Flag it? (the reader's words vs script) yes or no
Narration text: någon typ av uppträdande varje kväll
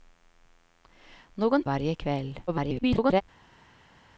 yes